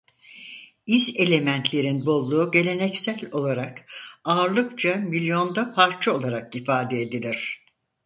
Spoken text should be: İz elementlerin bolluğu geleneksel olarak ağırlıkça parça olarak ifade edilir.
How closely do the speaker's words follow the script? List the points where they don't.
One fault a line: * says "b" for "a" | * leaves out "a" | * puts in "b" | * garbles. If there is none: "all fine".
* puts in "milyonda"